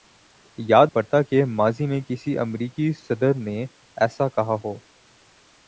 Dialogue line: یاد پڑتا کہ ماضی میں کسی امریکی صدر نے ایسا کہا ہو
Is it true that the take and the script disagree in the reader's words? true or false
false